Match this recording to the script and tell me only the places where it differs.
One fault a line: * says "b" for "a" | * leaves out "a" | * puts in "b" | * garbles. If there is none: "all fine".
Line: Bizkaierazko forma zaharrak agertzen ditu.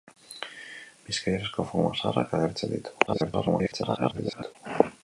* garbles